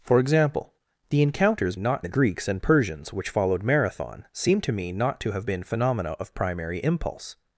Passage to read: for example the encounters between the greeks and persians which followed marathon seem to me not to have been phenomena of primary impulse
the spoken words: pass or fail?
fail